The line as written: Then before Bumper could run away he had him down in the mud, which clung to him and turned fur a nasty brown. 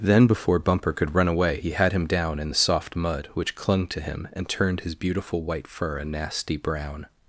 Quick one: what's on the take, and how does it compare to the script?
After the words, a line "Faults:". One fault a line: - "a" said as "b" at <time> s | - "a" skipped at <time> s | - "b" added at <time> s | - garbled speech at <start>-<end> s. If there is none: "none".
Then before Bumper could run away he had him down in the soft mud, which clung to him and turned his beautiful white fur a nasty brown.
Faults:
- "soft" added at 2.5 s
- "his beautiful white" added at 4.8 s